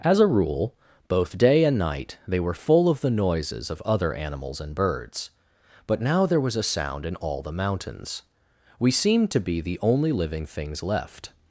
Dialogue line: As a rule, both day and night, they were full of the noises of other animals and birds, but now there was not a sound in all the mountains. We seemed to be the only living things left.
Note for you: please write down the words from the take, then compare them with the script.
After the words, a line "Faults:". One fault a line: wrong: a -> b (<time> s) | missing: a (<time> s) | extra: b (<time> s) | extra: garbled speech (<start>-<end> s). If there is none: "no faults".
As a rule, both day and night, they were full of the noises of other animals and birds, but now there was a sound in all the mountains. We seemed to be the only living things left.
Faults:
missing: not (6.5 s)